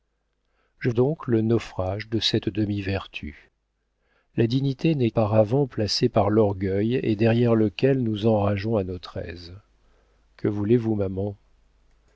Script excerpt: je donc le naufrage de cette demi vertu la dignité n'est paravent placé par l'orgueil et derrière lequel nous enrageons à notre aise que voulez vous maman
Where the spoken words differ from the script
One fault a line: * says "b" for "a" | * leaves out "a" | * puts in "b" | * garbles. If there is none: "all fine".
all fine